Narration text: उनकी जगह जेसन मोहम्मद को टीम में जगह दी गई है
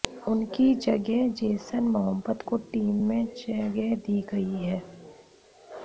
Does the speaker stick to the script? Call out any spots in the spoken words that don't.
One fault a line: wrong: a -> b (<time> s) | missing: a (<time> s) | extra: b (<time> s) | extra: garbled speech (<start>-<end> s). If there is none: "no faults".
no faults